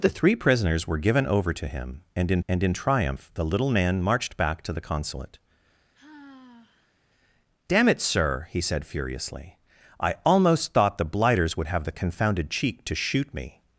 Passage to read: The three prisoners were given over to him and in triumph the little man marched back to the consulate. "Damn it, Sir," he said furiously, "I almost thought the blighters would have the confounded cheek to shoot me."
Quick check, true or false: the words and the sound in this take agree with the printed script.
false